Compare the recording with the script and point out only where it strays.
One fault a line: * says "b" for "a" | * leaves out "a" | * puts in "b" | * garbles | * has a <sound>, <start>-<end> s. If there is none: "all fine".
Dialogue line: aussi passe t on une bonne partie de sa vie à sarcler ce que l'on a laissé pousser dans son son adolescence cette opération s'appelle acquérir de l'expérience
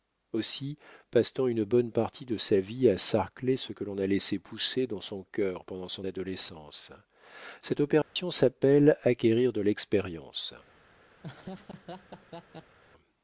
* puts in "cœur pendant"
* has a dropout, 8.0-8.2 s
* has a laugh, 11.2-12.8 s